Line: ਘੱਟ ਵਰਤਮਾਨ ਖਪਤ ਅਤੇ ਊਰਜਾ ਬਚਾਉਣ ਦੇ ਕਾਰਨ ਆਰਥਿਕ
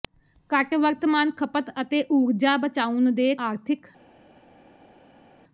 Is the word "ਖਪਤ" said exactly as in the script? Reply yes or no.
yes